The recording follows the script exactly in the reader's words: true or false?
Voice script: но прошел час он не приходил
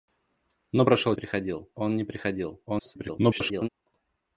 false